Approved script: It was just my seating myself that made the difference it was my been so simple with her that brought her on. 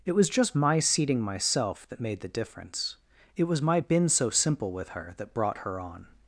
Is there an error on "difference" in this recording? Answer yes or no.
no